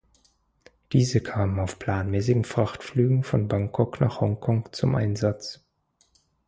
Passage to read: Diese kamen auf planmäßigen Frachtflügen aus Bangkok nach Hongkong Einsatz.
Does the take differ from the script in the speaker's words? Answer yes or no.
yes